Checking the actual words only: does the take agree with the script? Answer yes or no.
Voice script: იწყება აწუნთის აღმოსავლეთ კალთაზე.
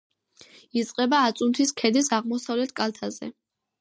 no